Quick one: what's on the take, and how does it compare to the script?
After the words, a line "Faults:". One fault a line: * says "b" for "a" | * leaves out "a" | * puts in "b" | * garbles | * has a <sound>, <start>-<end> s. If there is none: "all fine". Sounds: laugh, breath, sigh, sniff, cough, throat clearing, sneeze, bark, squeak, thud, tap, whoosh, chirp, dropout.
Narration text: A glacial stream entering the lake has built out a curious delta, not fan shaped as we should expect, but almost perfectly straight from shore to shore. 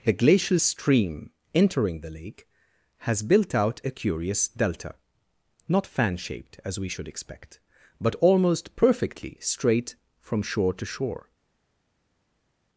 A glacial stream entering the lake has built out a curious delta, not fan shaped as we should expect, but almost perfectly straight from shore to shore.
Faults:
all fine